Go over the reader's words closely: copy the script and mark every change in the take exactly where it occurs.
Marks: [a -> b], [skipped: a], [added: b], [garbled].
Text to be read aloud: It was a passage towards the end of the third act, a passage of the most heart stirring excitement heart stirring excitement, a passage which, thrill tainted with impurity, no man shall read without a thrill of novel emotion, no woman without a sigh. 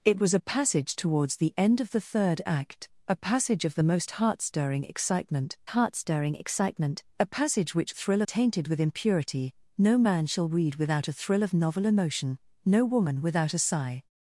It was a passage towards the end of the third act, a passage of the most heart stirring excitement heart stirring excitement, a passage which, thrill tainted with impurity, no man shall read without a thrill of novel emotion, no woman without a sigh.